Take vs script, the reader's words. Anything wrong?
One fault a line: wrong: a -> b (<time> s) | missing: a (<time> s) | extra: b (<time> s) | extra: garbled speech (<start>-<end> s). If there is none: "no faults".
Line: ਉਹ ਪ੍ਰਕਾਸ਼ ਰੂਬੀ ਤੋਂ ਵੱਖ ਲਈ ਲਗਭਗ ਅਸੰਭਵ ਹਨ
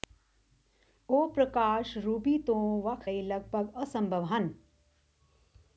no faults